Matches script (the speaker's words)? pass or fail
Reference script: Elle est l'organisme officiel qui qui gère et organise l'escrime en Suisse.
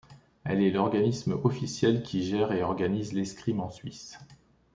fail